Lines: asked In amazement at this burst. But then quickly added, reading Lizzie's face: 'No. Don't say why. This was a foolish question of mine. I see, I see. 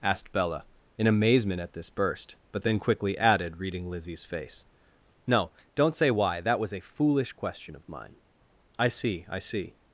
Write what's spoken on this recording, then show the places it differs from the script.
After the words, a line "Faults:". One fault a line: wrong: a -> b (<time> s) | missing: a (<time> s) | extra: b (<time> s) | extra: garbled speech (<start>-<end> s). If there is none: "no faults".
asked Bella, in amazement at this burst. But then quickly added, reading Lizzie's face: 'No. Don't say why. That was a foolish question of mine. I see, I see.
Faults:
extra: Bella (0.3 s)
wrong: This -> That (6.4 s)